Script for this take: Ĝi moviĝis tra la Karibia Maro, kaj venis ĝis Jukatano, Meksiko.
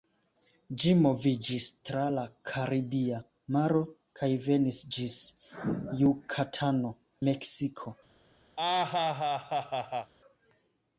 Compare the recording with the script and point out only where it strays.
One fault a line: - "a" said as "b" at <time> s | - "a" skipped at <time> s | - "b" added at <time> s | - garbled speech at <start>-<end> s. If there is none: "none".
none